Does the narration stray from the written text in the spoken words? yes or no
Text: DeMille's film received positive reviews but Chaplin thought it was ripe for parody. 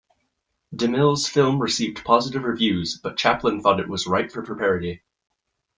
yes